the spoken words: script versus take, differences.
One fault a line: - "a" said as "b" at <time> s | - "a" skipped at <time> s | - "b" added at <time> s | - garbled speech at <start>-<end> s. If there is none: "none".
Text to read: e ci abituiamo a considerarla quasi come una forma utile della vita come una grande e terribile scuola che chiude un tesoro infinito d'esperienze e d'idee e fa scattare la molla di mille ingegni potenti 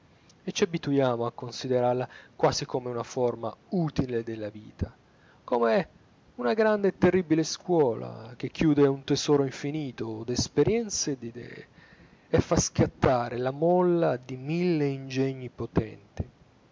none